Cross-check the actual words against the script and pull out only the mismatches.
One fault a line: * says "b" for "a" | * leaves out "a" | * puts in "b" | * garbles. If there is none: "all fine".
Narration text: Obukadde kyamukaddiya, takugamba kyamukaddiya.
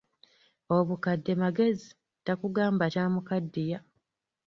* says "magezi" for "kyamukaddiya"